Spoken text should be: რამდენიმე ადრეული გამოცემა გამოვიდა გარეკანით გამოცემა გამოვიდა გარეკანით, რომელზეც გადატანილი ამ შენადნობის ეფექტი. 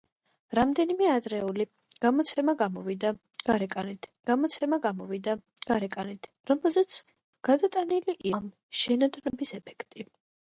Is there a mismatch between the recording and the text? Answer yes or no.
no